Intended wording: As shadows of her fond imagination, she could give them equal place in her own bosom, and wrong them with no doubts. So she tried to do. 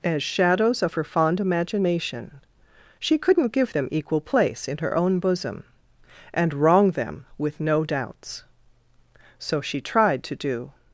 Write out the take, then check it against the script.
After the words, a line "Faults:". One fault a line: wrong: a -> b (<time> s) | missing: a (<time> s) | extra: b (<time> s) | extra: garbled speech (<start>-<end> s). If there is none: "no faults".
As shadows of her fond imagination, she couldn't give them equal place in her own bosom, and wrong them with no doubts. So she tried to do.
Faults:
wrong: could -> couldn't (3.2 s)